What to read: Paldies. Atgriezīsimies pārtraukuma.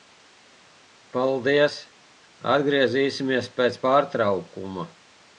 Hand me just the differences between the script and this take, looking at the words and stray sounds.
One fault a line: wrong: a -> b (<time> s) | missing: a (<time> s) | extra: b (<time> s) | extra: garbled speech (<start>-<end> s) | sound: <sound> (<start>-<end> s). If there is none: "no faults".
extra: pēc (3.6 s)